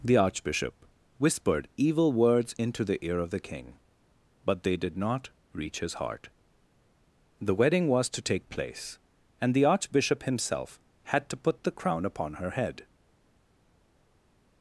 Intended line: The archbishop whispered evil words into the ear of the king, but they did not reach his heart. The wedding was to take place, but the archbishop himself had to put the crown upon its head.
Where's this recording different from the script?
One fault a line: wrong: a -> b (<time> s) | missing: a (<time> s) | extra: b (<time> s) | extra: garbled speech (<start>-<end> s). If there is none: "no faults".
wrong: but -> and (9.4 s)
wrong: its -> her (12.3 s)